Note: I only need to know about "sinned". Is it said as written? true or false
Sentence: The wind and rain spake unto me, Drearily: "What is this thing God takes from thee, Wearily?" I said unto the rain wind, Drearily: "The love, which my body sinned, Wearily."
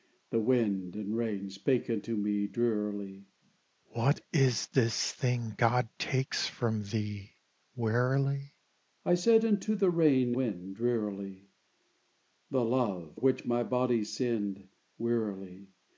true